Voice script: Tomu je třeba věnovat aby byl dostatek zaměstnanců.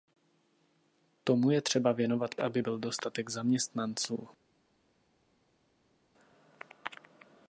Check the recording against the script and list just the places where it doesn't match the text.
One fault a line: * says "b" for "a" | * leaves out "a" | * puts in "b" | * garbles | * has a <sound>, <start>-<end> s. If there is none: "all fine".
all fine